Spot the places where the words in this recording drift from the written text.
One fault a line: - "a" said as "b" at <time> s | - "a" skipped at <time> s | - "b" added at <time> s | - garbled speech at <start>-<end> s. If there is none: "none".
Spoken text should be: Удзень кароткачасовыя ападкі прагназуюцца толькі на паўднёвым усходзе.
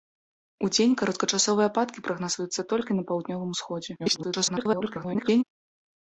- garbled speech at 4.0-5.4 s